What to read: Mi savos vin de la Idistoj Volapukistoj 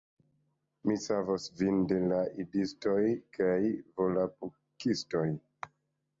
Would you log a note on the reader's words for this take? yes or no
yes